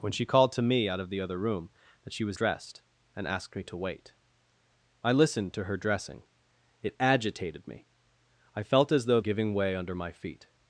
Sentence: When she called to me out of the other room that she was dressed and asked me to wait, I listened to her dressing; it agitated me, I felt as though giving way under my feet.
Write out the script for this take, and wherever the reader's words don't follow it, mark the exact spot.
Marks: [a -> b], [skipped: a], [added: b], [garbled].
When she called to me out of the other room that she was dressed and asked me to wait, I listened to her dressing; it agitated me, I felt as though giving way under my feet.